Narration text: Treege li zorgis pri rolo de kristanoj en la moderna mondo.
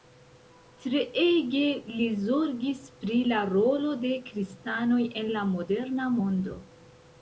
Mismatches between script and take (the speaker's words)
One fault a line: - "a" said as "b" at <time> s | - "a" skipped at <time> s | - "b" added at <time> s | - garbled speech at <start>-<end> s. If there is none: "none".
- "la" added at 3.4 s